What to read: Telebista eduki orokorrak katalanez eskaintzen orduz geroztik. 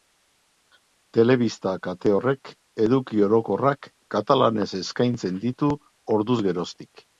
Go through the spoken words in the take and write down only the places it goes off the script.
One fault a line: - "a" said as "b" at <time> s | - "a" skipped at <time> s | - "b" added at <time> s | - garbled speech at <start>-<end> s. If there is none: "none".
- "kate horrek" added at 1.9 s
- "ditu" added at 5.5 s